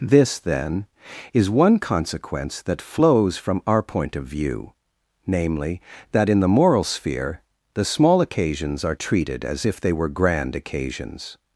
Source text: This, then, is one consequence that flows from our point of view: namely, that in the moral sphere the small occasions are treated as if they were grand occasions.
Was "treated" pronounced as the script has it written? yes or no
yes